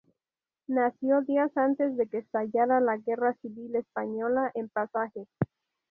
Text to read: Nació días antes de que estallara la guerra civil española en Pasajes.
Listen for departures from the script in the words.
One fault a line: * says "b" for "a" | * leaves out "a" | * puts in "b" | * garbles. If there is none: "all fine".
all fine